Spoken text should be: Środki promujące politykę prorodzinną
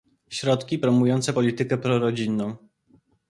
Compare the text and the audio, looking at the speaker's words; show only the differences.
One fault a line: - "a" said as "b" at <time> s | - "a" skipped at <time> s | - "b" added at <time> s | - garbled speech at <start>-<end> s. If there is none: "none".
none